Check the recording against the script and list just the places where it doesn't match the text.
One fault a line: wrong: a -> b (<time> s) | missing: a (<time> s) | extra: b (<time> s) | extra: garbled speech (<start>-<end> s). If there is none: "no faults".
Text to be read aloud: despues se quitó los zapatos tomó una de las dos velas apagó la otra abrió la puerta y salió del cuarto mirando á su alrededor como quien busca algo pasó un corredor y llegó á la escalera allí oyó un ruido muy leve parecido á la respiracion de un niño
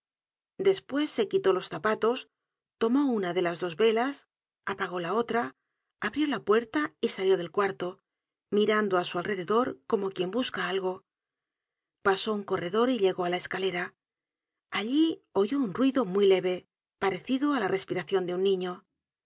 no faults